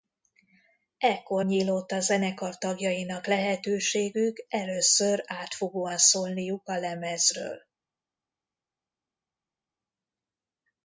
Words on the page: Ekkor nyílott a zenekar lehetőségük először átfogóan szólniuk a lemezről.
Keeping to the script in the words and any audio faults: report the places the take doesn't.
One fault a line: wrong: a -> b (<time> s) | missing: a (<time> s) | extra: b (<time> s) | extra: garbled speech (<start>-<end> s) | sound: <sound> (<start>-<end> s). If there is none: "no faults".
extra: tagjainak (2.6 s)